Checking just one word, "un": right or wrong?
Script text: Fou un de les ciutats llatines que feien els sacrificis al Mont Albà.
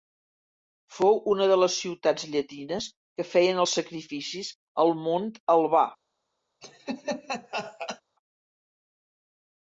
wrong